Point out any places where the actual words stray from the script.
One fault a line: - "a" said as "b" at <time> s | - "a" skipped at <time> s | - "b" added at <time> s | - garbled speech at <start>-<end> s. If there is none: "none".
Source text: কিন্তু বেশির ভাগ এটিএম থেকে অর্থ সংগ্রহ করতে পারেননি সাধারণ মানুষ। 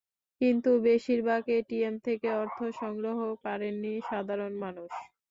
- "করতে" skipped at 3.2 s